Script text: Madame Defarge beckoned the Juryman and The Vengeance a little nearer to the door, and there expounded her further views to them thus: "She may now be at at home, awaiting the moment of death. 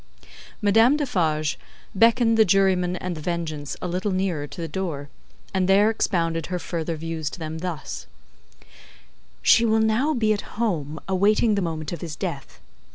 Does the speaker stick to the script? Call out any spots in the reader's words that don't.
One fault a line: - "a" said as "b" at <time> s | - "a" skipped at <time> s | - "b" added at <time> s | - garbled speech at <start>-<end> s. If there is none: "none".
- "may" said as "will" at 9.7 s
- "at" skipped at 10.6 s
- "his" added at 12.0 s